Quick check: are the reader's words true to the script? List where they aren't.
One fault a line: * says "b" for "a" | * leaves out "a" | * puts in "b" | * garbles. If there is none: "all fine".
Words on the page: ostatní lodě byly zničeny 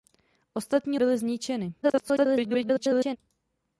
* leaves out "lodě"
* garbles